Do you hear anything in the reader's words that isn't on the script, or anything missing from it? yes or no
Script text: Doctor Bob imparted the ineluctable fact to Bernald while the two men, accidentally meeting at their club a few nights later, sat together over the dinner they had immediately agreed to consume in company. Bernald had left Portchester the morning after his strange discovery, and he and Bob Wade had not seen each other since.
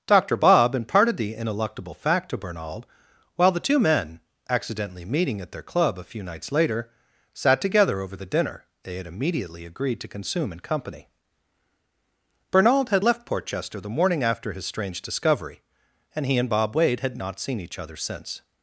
no